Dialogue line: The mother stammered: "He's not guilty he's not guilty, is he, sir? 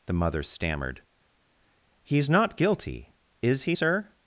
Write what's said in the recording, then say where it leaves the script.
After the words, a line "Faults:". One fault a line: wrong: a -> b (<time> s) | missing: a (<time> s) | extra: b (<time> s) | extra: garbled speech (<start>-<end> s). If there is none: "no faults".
The mother stammered: "He's not guilty, is he, sir?
Faults:
missing: he's not guilty (3.1 s)